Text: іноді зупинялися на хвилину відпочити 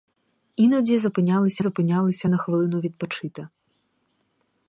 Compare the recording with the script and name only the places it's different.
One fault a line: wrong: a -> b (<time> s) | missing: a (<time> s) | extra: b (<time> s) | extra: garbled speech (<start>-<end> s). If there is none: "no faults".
extra: зупинялися (1.6 s)